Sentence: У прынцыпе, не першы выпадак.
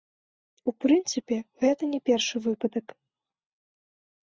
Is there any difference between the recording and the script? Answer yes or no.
yes